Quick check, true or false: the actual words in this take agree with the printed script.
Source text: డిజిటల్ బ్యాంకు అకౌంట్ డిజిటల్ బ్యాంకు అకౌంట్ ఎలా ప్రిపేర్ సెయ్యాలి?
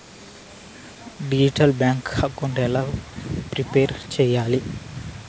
false